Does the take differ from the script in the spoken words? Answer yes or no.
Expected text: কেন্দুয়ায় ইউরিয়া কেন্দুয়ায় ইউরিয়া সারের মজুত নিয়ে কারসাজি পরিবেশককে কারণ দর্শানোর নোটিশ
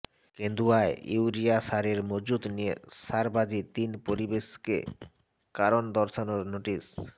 yes